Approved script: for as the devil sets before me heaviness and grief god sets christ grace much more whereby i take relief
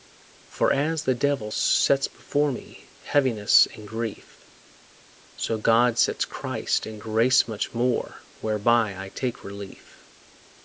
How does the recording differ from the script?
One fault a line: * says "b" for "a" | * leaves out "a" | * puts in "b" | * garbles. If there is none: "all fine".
* puts in "so"
* puts in "and"